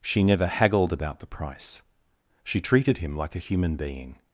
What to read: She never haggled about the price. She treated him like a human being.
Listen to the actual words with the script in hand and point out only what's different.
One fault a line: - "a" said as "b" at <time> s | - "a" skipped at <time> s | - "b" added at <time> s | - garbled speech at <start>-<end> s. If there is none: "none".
none